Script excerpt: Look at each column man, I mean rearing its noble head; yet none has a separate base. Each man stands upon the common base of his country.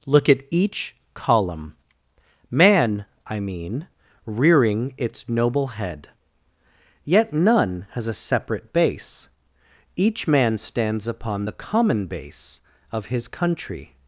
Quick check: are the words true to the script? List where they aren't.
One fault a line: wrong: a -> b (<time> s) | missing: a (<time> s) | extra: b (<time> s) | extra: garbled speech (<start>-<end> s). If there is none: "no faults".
no faults